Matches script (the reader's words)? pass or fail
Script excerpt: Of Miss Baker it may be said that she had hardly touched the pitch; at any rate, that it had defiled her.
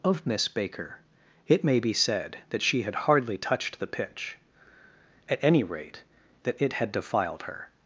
pass